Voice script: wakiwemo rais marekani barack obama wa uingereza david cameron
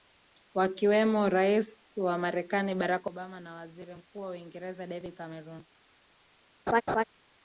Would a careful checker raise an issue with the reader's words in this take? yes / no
yes